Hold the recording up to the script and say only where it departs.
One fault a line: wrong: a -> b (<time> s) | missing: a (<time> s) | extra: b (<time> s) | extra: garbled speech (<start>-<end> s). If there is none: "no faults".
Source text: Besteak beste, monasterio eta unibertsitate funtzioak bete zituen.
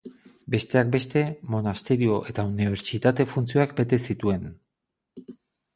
no faults